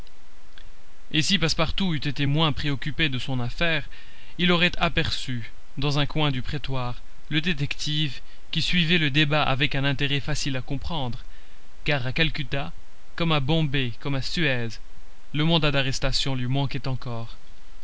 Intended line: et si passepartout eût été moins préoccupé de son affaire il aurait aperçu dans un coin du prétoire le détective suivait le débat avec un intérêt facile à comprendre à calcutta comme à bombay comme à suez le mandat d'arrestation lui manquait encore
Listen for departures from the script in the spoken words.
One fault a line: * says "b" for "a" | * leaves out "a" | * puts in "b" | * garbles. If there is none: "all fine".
* puts in "qui"
* puts in "car"